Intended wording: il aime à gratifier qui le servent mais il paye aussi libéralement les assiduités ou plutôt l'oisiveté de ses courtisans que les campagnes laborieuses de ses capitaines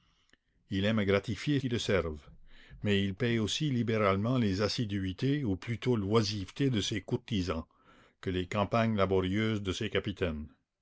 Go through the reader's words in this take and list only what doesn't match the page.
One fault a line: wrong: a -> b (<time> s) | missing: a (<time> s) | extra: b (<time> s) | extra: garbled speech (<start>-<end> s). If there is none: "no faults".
no faults